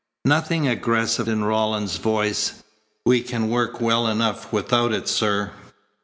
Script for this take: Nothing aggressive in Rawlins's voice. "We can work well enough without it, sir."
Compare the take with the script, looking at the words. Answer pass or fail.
pass